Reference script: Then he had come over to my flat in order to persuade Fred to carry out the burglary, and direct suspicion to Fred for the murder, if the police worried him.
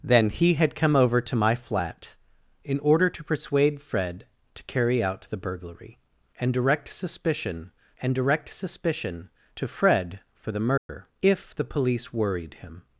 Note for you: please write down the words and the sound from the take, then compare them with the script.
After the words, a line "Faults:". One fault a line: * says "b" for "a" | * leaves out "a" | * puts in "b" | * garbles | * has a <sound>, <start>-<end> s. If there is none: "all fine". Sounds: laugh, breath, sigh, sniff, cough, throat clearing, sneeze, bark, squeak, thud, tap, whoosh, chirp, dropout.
Then he had come over to my flat in order to persuade Fred to carry out the burglary, and direct suspicion and direct suspicion to Fred for the murder, if the police worried him.
Faults:
* puts in "and direct suspicion"
* has a dropout, 10.8-10.9 s